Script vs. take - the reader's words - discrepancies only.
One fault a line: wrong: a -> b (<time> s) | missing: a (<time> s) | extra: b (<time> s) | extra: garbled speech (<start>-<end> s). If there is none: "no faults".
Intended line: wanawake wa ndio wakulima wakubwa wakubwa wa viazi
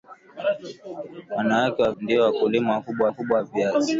no faults